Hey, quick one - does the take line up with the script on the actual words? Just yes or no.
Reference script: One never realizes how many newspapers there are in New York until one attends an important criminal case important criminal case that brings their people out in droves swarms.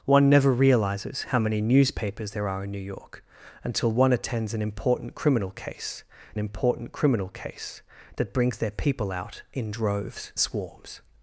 yes